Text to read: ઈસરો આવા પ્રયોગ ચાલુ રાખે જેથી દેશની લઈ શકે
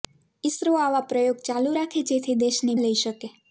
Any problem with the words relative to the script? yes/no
no